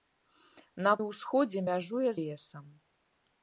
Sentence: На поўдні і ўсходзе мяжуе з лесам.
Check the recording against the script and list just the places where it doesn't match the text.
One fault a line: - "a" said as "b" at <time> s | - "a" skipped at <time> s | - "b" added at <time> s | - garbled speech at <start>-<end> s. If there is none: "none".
- "поўдні" skipped at 0.9 s
- "з" skipped at 2.1 s